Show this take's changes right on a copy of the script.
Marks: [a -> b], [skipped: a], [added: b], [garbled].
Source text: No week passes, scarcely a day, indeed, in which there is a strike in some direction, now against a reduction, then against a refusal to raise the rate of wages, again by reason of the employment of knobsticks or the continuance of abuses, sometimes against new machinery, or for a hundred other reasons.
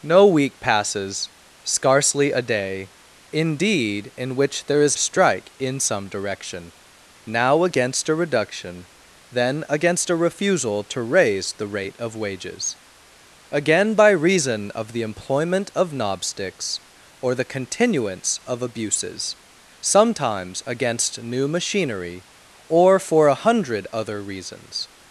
No week passes, scarcely a day, indeed, in which there is a strike in some direction, now against a reduction, then against a refusal to raise the rate of wages, again by reason of the employment of knobsticks or the continuance of abuses, sometimes against new machinery, or for a hundred other reasons.